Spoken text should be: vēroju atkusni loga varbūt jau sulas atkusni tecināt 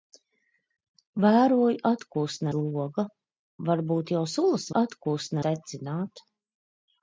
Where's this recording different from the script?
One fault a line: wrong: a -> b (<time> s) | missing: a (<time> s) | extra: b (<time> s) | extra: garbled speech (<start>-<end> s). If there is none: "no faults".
no faults